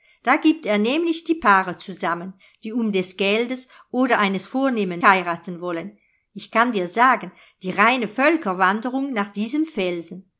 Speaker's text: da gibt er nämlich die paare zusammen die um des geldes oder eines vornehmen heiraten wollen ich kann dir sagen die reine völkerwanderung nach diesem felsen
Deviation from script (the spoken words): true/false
false